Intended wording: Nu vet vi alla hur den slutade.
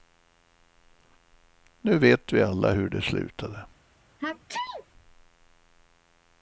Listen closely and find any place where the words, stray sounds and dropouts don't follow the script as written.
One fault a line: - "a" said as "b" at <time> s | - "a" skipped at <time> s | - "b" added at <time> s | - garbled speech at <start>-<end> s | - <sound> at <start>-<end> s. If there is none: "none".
- "den" said as "det" at 2.9 s
- sneeze at 4.2-4.9 s